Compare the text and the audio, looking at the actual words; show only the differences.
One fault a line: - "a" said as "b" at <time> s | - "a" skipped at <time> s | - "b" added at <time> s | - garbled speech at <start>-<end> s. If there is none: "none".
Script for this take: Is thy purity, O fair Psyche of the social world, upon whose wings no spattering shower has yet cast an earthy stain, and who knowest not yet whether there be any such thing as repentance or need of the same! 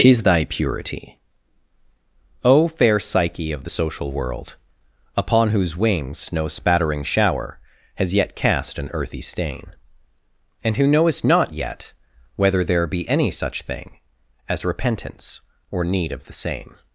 none